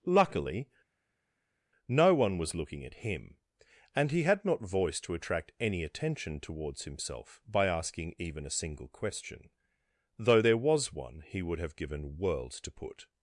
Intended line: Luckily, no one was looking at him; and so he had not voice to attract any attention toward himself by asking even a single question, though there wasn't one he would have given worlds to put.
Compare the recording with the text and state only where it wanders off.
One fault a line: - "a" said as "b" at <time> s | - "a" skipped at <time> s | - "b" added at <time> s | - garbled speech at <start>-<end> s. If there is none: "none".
- "so" skipped at 4.1 s
- "toward" said as "towards" at 6.4 s
- "wasn't" said as "was" at 10.6 s